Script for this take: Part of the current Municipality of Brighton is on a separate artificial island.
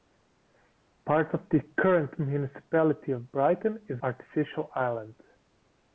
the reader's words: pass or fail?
fail